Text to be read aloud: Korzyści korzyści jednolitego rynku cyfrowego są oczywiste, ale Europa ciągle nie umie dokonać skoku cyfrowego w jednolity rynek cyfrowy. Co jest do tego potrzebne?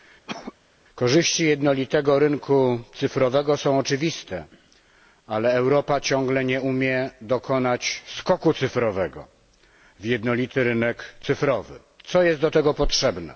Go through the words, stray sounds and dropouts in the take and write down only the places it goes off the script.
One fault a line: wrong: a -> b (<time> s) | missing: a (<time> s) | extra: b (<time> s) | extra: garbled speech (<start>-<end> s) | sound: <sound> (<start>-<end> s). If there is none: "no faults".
sound: cough (0.3-0.5 s)
missing: korzyści (1.4 s)